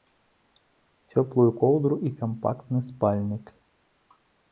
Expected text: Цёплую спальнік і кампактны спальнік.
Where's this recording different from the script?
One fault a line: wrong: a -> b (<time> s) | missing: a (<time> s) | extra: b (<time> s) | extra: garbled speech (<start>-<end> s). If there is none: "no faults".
wrong: спальнік -> коўдру (1.6 s)